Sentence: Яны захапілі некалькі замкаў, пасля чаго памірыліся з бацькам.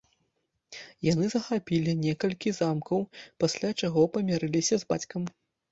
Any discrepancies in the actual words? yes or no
no